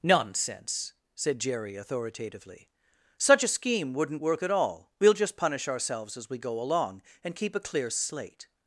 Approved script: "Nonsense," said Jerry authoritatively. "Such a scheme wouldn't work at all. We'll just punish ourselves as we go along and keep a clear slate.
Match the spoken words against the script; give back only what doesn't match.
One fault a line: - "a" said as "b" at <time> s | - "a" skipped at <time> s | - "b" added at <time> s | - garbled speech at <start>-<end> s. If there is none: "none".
none